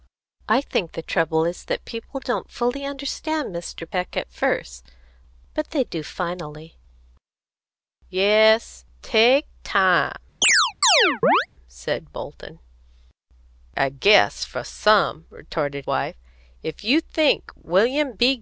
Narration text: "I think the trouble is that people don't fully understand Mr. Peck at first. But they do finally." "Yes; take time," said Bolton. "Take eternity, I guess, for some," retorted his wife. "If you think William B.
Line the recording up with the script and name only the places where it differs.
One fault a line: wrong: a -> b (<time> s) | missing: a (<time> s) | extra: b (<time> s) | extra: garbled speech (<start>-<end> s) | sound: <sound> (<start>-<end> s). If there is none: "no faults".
sound: chirp (10.4-11.5 s)
missing: Take eternity (12.6 s)
missing: his (15.9 s)